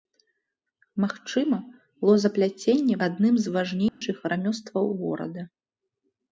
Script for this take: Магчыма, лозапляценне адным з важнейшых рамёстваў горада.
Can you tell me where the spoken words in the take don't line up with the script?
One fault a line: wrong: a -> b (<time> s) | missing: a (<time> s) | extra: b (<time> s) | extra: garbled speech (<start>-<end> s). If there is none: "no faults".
no faults